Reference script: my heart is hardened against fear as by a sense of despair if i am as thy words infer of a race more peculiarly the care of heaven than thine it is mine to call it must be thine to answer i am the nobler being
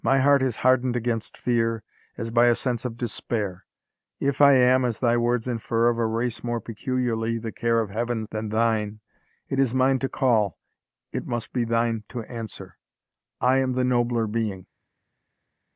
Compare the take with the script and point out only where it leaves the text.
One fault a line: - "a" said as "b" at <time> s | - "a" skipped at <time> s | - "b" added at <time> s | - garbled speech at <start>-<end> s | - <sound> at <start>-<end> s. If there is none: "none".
none